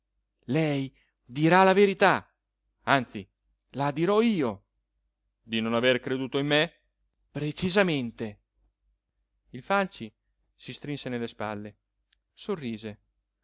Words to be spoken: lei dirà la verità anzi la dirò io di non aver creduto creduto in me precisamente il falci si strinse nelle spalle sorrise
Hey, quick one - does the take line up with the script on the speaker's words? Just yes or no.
no